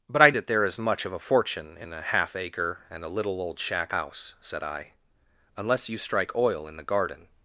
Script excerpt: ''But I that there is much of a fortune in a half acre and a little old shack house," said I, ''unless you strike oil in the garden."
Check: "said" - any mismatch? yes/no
no